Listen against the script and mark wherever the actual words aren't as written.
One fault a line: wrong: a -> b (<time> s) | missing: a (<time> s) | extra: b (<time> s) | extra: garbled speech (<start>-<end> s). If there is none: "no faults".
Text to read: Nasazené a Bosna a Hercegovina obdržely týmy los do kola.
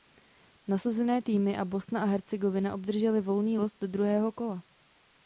extra: týmy (1.2 s)
wrong: týmy -> volný (3.2 s)
extra: druhého (3.9 s)